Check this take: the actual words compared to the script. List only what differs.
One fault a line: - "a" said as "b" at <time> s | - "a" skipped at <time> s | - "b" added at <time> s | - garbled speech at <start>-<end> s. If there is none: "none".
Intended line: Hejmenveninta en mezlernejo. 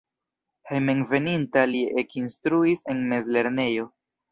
- "li ekinstruis" added at 1.7 s